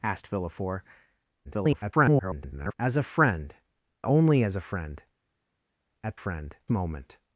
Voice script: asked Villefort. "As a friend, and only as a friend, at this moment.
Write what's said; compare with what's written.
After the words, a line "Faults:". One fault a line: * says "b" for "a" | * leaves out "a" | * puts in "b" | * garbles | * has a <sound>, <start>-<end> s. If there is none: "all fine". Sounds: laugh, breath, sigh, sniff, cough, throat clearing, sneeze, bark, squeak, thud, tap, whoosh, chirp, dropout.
asked Villefort. [garbled] "As a friend, only as a friend, at friend moment.
Faults:
* garbles
* leaves out "and"
* says "friend" for "this"